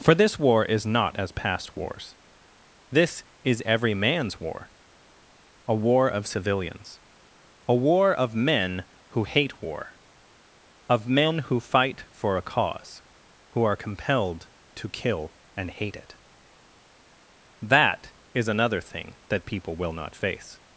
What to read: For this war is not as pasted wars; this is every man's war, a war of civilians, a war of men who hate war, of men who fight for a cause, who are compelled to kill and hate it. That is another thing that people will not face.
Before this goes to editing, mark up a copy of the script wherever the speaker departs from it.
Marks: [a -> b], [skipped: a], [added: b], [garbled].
For this war is not as [pasted -> past] wars; this is every man's war, a war of civilians, a war of men who hate war, of men who fight for a cause, who are compelled to kill and hate it. That is another thing that people will not face.